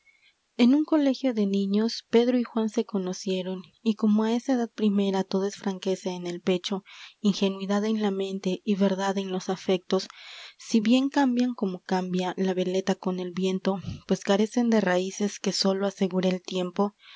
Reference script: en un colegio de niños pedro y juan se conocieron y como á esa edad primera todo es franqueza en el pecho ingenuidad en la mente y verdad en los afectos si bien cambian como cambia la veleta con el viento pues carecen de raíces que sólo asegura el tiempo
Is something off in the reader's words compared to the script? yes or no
no